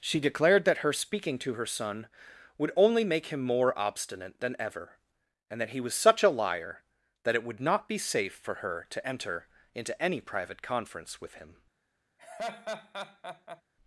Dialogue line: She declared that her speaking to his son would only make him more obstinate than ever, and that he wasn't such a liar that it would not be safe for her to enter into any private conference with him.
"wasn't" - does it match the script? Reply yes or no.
no